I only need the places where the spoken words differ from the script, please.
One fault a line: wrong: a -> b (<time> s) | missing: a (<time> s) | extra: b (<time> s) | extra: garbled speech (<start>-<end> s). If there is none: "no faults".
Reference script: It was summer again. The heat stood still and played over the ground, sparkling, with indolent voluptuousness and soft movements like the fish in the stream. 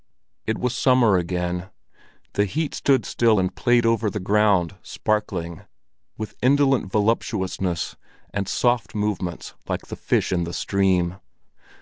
no faults